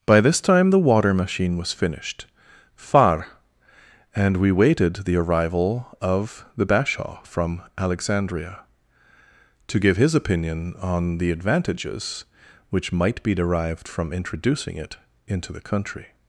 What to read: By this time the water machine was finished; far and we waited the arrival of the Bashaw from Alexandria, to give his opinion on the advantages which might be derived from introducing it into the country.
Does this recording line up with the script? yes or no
yes